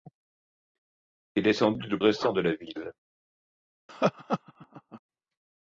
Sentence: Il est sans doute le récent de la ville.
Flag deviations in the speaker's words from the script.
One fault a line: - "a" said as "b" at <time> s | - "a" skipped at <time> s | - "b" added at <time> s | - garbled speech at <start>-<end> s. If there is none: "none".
none